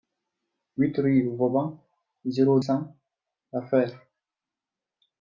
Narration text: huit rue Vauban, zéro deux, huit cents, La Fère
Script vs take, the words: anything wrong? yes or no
yes